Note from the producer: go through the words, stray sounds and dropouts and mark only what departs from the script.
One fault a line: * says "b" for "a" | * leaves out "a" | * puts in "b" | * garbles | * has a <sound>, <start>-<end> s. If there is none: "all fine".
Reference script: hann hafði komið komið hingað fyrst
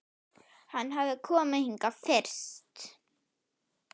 * leaves out "komið"